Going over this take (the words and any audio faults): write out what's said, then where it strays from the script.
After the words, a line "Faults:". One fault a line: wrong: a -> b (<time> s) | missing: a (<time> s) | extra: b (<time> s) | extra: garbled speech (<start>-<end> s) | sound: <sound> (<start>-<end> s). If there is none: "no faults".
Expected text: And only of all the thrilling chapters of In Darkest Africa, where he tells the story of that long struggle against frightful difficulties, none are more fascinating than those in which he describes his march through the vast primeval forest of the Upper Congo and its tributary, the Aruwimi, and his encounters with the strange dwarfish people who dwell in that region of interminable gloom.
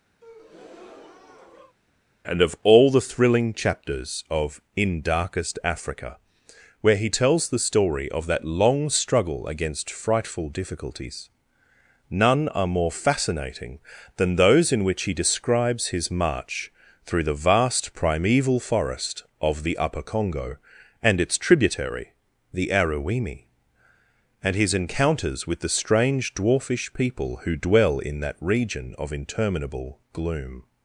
And of all the thrilling chapters of In Darkest Africa, where he tells the story of that long struggle against frightful difficulties, none are more fascinating than those in which he describes his march through the vast primeval forest of the Upper Congo and its tributary, the Aruwimi, and his encounters with the strange dwarfish people who dwell in that region of interminable gloom.
Faults:
sound: breath (0.2-1.8 s)
missing: only (2.4 s)